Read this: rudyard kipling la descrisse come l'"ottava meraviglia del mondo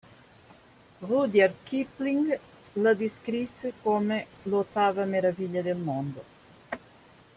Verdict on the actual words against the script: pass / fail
pass